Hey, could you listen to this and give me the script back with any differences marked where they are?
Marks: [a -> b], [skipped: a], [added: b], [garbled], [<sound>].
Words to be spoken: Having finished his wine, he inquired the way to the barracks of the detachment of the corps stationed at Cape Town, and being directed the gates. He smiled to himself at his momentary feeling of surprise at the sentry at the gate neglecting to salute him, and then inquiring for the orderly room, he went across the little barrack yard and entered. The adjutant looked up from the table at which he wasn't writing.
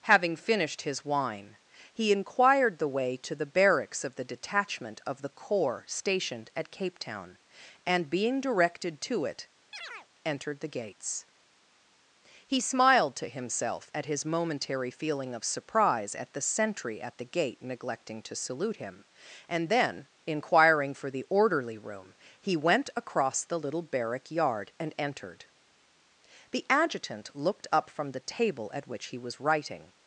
Having finished his wine, he inquired the way to the barracks of the detachment of the corps stationed at Cape Town, and being directed [added: to it entered] [chirp] the gates. He smiled to himself at his momentary feeling of surprise at the sentry at the gate neglecting to salute him, and then inquiring for the orderly room, he went across the little barrack yard and entered. The adjutant looked up from the table at which he [wasn't -> was] writing.